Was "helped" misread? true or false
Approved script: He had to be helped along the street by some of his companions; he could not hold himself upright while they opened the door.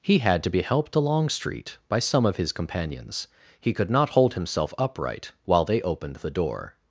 false